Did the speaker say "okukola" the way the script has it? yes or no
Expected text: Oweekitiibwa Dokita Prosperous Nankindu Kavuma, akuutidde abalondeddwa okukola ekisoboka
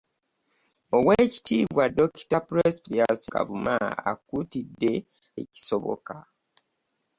no